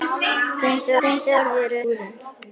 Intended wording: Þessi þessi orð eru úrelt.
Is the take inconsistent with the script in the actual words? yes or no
no